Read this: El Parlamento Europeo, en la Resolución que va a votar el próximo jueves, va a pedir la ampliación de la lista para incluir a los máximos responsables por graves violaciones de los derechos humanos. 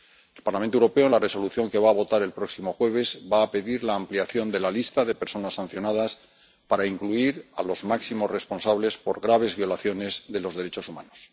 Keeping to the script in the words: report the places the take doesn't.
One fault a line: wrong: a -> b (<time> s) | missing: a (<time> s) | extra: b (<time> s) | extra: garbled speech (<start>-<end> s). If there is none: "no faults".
extra: de personas sancionadas (5.0 s)